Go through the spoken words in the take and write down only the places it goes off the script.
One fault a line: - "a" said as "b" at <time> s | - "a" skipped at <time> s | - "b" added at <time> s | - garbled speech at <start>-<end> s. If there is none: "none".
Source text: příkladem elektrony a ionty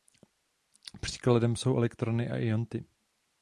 - "jsou" added at 1.6 s